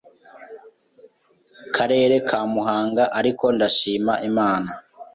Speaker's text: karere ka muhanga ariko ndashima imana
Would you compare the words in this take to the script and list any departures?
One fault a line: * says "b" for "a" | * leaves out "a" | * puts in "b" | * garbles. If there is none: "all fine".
all fine